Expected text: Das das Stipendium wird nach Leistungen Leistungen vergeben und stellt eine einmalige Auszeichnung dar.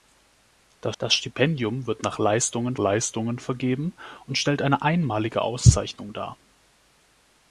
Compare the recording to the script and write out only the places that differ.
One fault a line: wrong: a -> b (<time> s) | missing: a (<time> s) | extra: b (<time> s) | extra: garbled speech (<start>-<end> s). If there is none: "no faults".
no faults